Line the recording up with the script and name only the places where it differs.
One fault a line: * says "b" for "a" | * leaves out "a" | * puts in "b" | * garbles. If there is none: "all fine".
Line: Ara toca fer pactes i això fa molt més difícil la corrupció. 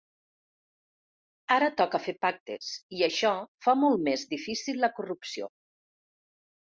all fine